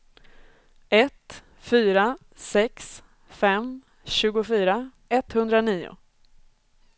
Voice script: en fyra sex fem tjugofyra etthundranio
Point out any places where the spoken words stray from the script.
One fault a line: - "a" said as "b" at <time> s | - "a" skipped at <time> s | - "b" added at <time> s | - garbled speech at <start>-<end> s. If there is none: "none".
- "en" said as "ett" at 0.9 s